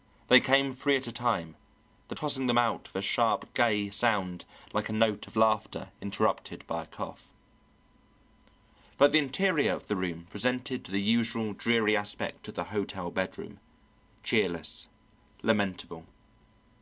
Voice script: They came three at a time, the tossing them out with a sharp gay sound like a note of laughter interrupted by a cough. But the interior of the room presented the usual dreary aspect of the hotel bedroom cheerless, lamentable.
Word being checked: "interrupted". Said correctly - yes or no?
yes